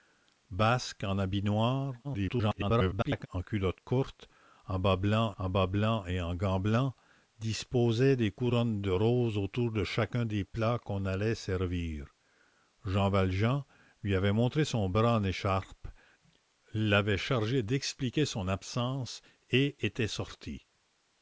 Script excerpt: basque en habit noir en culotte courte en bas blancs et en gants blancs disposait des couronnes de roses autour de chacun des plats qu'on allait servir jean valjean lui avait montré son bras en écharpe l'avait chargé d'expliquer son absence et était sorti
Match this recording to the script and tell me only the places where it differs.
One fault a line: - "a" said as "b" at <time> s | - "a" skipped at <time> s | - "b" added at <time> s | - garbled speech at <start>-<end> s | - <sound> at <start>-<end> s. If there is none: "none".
- garbled speech at 2.0-3.3 s
- "en bas blancs" added at 5.4 s